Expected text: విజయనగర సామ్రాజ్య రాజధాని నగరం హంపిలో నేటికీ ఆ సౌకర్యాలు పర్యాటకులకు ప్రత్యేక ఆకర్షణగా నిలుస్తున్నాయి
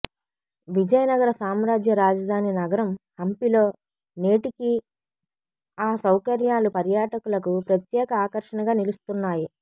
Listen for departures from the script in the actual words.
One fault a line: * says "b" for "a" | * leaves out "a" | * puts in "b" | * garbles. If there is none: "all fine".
all fine